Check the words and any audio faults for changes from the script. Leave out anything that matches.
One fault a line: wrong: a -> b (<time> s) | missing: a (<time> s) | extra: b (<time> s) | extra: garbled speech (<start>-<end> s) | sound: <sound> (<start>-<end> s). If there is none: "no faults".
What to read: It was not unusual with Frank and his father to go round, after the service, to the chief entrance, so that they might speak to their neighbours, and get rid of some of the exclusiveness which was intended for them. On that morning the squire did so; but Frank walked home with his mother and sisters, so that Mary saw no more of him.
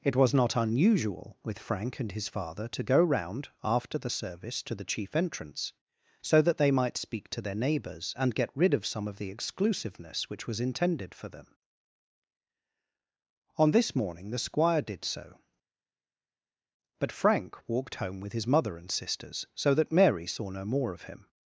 wrong: that -> this (13.7 s)